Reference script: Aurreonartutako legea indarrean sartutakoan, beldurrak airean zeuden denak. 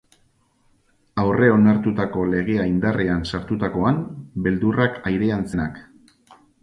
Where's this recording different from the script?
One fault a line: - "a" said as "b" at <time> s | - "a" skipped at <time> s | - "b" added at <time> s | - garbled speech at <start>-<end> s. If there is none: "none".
- "zeuden" skipped at 5.5 s